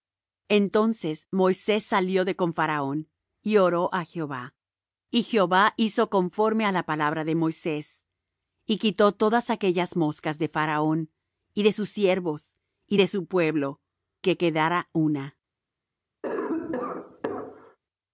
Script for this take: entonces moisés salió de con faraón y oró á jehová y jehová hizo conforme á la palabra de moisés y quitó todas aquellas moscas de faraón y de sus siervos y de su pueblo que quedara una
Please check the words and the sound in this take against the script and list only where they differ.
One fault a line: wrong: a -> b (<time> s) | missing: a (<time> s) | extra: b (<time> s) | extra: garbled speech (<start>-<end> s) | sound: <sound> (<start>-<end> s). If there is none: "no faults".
sound: cough (16.2-17.8 s)